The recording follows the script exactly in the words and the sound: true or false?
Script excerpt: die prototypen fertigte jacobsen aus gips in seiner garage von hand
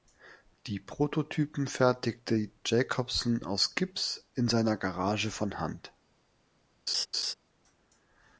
false